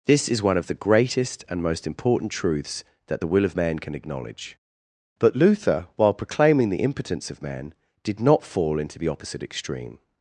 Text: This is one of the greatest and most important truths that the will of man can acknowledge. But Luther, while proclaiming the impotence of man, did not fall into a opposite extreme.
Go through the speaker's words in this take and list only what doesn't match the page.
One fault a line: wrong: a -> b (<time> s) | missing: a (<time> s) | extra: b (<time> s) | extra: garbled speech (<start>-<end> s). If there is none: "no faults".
wrong: a -> the (9.0 s)